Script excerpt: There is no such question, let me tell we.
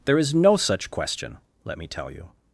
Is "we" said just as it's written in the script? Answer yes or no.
no